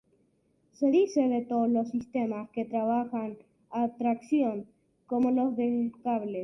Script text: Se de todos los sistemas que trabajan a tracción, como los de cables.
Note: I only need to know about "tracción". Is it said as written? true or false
true